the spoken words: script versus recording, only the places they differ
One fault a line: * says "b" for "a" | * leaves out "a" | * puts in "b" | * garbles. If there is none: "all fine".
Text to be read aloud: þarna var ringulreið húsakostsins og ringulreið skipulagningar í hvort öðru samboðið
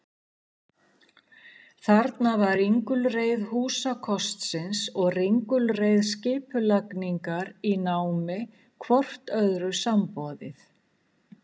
* puts in "námi"